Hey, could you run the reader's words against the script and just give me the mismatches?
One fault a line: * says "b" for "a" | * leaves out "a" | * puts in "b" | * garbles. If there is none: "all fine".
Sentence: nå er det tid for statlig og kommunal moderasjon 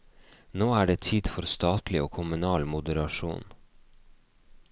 all fine